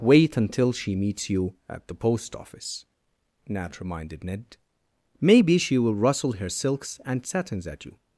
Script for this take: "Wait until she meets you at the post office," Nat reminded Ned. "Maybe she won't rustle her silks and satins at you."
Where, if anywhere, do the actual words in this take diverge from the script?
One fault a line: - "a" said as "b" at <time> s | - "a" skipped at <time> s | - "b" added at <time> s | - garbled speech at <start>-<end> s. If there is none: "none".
- "won't" said as "will" at 5.8 s